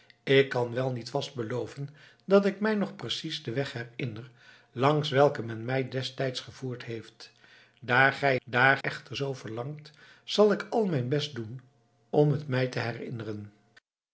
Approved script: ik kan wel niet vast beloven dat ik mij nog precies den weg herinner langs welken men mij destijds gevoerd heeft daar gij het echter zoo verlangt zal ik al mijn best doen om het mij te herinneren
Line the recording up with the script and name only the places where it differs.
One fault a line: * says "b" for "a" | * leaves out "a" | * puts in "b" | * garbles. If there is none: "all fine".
* says "daar" for "het"